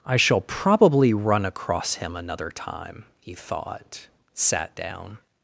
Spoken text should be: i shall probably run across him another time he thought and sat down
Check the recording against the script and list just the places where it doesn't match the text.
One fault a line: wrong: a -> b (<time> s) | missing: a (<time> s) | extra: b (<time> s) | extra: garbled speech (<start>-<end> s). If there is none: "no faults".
missing: and (4.1 s)